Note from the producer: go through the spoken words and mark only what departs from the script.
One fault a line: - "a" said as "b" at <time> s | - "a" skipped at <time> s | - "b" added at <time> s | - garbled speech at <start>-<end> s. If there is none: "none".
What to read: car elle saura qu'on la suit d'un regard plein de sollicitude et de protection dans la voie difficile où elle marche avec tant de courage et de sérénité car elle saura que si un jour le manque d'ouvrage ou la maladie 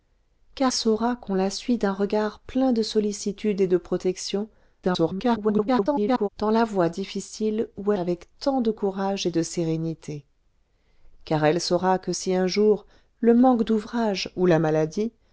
- "elle" skipped at 0.7 s
- garbled speech at 4.8-6.3 s
- "elle marche" skipped at 7.9 s